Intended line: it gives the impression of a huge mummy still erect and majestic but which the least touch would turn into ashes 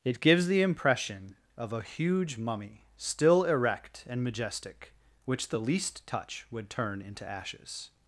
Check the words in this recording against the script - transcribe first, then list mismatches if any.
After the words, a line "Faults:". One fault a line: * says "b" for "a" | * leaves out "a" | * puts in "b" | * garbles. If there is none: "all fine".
it gives the impression of a huge mummy still erect and majestic which the least touch would turn into ashes
Faults:
* leaves out "but"